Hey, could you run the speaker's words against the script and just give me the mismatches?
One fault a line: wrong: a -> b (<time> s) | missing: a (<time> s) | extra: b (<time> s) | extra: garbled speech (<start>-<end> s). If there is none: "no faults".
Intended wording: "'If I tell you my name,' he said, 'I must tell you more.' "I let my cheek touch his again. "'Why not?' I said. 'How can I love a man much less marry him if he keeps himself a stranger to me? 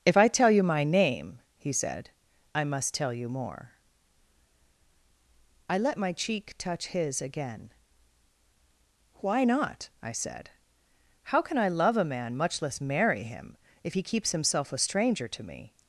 no faults